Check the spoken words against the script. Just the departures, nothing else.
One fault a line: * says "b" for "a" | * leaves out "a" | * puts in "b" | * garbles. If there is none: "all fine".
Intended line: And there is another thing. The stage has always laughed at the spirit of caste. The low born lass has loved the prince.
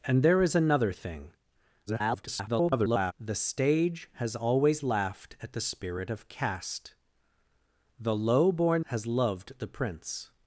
* garbles
* leaves out "lass"